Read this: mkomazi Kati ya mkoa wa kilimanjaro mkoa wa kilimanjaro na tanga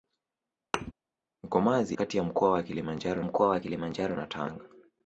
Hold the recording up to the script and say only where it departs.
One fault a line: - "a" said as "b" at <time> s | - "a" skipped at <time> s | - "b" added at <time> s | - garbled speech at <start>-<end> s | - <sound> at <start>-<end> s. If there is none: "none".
- thud at 0.7-0.9 s